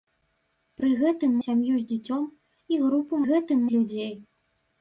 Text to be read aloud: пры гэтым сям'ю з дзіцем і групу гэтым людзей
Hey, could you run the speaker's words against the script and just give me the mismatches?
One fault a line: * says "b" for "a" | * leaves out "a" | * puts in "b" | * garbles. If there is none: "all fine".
all fine